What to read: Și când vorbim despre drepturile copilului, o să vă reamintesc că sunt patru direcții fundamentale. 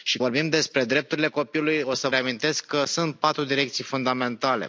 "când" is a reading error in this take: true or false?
true